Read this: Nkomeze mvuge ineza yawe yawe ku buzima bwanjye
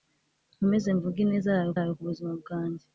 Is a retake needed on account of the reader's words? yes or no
no